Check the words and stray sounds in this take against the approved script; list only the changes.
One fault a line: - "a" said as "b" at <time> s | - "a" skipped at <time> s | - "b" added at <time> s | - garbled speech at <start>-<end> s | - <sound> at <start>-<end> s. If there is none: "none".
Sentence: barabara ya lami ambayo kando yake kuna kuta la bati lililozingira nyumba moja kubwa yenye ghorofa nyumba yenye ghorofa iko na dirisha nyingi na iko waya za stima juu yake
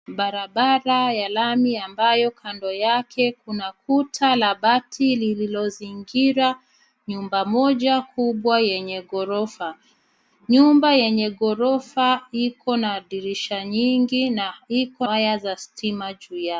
none